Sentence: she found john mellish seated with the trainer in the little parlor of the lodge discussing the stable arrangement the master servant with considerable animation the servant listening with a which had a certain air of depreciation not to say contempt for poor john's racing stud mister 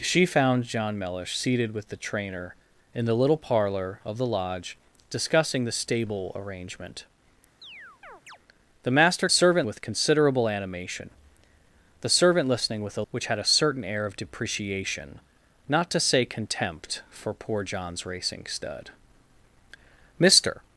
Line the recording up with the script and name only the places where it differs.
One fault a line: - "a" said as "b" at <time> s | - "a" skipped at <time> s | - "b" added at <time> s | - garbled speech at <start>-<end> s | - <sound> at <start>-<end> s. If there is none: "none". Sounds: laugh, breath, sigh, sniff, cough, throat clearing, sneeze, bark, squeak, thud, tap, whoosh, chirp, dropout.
- chirp at 7.6-8.4 s